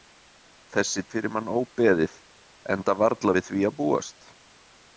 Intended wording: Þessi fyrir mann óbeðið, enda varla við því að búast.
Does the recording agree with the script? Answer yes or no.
yes